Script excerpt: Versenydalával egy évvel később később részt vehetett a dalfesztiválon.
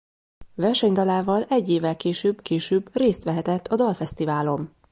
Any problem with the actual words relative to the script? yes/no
no